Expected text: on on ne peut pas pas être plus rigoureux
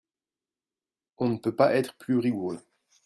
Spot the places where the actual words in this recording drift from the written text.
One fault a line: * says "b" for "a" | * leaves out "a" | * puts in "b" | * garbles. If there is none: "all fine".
* leaves out "on"
* leaves out "pas"